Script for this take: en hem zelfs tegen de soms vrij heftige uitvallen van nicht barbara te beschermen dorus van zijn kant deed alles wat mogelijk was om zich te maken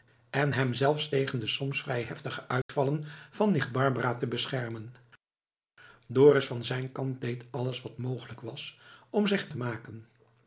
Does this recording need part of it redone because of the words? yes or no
no